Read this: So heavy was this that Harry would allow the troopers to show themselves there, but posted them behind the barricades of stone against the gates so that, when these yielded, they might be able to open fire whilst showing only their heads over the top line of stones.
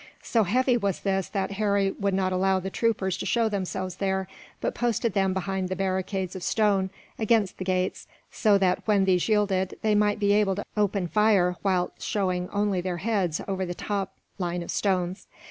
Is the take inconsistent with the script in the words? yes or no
yes